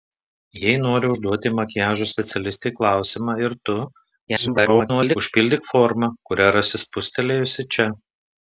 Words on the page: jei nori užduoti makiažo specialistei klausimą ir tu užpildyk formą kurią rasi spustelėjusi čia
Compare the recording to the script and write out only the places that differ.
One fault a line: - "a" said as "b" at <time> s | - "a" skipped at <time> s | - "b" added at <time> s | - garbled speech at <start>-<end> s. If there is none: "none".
- garbled speech at 4.3-5.2 s